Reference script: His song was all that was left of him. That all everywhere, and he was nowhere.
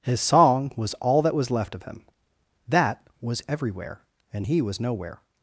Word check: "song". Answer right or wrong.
right